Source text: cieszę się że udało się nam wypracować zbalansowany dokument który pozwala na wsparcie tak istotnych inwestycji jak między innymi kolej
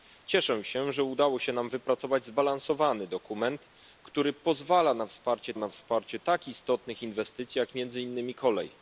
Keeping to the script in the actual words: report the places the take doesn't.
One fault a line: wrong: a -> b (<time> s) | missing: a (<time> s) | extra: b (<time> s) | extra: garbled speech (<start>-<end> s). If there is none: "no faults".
extra: na wsparcie (5.5 s)